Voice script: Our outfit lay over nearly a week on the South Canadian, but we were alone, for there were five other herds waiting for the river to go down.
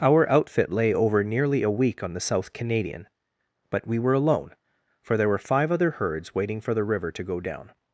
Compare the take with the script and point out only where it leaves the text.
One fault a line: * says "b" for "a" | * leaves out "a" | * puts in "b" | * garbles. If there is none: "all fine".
all fine